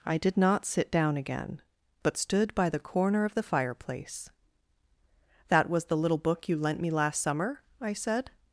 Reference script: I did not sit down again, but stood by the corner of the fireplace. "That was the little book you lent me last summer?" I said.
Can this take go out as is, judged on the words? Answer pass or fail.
pass